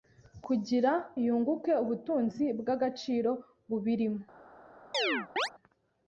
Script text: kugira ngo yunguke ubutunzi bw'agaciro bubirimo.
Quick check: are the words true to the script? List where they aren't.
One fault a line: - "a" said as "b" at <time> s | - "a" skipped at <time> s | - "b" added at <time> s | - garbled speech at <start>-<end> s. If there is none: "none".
- "ngo" skipped at 0.9 s